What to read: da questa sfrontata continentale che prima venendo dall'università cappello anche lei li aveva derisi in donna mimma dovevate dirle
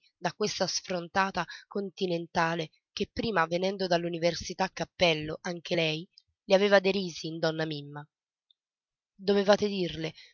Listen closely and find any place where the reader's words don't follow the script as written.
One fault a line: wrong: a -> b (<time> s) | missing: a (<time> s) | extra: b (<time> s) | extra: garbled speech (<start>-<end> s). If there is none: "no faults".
no faults